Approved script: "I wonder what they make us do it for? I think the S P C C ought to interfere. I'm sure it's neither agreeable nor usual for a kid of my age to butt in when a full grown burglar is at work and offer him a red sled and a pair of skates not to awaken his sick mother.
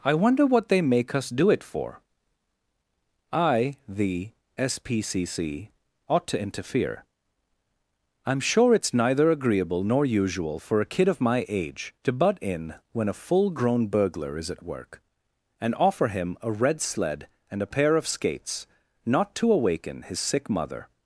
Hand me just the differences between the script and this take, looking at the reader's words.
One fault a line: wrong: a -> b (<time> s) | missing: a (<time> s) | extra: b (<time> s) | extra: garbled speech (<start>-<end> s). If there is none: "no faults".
missing: think (3.8 s)